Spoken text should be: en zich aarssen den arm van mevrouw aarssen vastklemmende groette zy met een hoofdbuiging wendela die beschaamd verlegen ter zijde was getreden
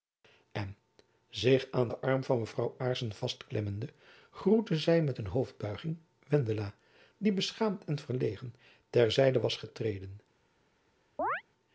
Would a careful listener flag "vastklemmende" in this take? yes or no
no